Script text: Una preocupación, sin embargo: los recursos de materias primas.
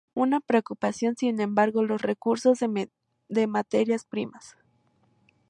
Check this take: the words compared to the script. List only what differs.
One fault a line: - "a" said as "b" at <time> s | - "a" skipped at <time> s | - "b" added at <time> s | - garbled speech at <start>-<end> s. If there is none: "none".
none